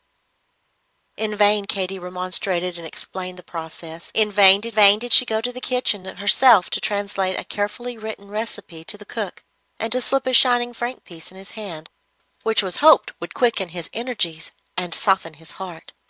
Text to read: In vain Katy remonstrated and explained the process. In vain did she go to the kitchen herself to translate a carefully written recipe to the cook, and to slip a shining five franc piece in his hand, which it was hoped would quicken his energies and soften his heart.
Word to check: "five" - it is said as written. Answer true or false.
false